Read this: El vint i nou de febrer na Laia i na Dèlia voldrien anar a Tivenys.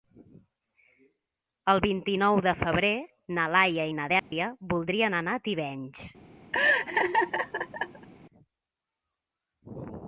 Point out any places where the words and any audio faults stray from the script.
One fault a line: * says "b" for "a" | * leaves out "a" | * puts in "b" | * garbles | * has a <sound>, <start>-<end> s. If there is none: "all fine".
* has a dropout, 4.2-4.3 s
* has a laugh, 6.5-8.1 s